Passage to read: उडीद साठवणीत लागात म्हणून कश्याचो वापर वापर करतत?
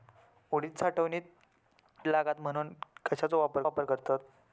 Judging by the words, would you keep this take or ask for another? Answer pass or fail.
pass